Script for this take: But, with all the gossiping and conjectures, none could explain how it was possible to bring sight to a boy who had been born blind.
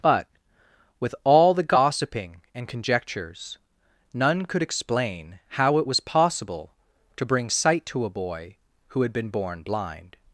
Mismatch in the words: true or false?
false